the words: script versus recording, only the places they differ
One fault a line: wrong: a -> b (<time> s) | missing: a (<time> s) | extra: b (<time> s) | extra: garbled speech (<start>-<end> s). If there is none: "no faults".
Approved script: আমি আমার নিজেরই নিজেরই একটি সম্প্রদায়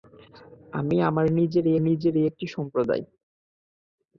no faults